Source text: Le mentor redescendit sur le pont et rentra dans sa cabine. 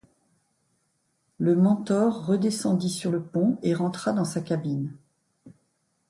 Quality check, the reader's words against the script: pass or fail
pass